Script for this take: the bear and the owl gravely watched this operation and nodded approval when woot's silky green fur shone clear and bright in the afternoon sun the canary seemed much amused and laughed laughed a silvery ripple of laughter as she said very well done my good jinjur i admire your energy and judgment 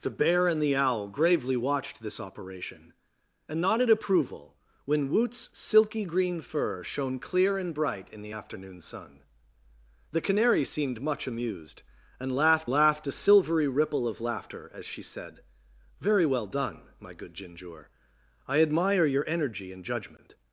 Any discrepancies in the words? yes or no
no